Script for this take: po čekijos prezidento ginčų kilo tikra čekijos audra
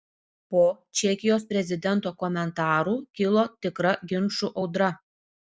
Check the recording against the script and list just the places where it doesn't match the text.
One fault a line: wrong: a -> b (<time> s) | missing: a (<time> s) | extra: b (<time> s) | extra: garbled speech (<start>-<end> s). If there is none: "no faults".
wrong: ginčų -> komentarų (2.2 s)
wrong: čekijos -> ginčų (4.1 s)